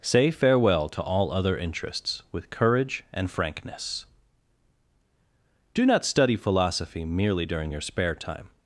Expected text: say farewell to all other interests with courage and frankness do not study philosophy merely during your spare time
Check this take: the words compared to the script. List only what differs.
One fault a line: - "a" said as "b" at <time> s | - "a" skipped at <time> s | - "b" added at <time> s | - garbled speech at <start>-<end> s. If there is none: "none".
none